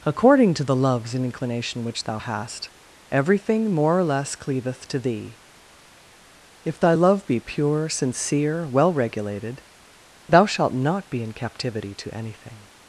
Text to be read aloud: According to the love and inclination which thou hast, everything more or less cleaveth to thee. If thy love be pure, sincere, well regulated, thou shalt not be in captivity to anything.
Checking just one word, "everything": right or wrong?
right